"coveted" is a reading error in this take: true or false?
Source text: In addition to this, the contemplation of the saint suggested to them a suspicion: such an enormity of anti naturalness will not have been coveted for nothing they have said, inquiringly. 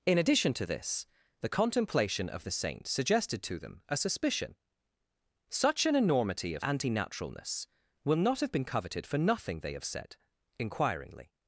false